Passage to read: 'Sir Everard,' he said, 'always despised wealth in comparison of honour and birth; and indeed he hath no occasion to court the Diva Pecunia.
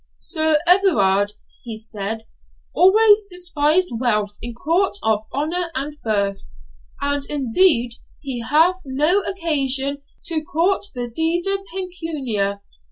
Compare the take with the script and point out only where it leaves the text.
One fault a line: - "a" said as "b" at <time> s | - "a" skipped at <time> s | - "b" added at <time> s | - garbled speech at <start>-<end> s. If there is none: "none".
- "comparison" said as "court" at 4.6 s